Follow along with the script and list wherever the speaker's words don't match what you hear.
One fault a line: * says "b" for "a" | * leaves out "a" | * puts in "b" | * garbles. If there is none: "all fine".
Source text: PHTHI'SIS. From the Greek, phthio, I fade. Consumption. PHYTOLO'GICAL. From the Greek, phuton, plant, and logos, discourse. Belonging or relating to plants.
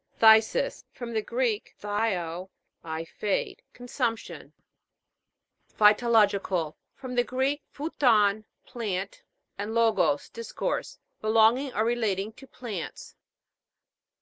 all fine